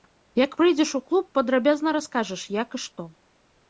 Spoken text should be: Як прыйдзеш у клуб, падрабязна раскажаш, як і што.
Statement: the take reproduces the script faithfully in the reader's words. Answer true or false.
true